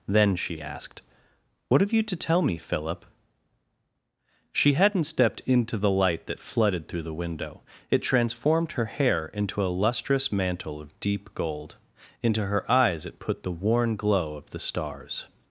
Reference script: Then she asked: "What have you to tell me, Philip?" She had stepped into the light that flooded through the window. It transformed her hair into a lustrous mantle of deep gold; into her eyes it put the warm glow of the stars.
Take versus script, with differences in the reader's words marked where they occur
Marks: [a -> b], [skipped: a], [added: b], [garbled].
Then she asked: "What have you to tell me, Philip?" She [had -> hadn't] stepped into the light that flooded through the window. It transformed her hair into a lustrous mantle of deep gold; into her eyes it put the [warm -> worn] glow of the stars.